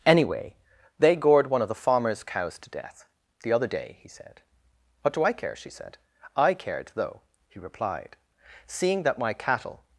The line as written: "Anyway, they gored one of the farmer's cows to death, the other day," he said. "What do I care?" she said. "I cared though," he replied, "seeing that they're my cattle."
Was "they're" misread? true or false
true